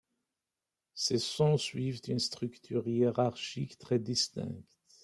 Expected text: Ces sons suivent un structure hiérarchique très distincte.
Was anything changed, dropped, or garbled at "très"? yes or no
no